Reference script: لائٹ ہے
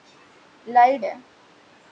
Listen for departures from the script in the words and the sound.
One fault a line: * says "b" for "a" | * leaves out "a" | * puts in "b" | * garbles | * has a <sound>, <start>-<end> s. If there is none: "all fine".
all fine